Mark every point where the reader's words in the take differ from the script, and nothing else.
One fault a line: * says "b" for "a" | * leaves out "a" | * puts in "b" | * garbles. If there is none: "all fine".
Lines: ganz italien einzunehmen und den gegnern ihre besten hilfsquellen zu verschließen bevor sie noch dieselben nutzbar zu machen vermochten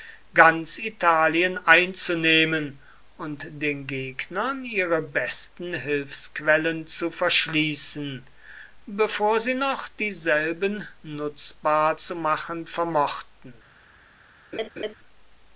all fine